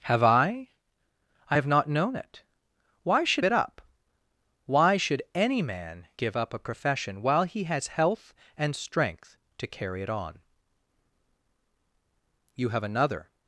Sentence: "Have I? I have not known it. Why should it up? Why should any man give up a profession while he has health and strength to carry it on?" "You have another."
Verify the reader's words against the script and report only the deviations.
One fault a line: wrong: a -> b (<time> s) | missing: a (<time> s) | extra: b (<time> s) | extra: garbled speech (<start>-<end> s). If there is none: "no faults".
no faults